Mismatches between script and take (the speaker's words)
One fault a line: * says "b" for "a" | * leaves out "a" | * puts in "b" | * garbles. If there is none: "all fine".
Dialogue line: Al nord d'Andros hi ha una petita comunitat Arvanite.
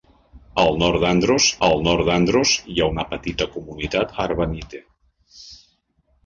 * puts in "al nord d'Andros"